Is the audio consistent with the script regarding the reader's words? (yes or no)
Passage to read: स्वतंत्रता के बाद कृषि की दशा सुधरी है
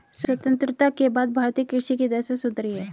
no